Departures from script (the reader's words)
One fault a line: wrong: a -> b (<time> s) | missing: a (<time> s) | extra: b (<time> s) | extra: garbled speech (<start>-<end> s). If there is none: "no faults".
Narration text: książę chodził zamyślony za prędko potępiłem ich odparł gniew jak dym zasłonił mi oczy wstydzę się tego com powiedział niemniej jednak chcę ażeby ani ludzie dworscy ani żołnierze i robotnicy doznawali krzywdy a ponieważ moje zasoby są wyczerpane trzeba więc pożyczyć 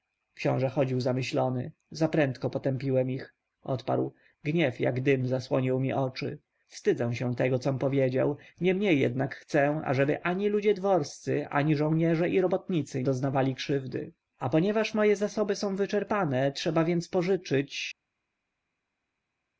no faults